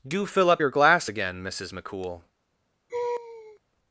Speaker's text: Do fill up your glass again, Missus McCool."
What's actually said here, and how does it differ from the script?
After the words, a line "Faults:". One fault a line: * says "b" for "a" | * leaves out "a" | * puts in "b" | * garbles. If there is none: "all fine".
Do fill up your glass again, Missus McCool."
Faults:
all fine